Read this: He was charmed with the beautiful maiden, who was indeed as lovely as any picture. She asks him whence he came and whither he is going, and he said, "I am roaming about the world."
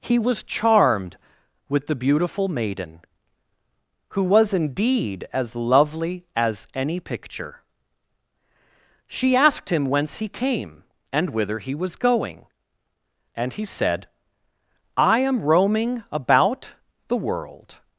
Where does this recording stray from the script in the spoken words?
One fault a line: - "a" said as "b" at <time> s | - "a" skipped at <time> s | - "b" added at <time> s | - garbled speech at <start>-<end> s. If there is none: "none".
- "asks" said as "asked" at 9.4 s
- "is" said as "was" at 11.7 s